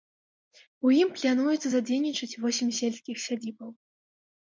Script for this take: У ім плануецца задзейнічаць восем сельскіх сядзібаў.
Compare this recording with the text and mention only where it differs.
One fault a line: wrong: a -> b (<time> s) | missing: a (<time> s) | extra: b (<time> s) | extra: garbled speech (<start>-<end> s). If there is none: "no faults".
no faults